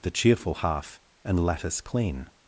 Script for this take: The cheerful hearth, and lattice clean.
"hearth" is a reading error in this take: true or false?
true